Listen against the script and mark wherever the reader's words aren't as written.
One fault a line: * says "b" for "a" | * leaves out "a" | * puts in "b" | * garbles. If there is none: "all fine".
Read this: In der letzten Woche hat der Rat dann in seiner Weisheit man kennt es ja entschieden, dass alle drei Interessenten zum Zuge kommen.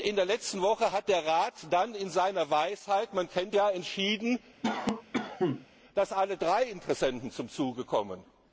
* leaves out "es"